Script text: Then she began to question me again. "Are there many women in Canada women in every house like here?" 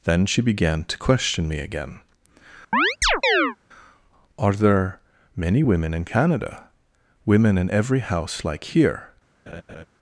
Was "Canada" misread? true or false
false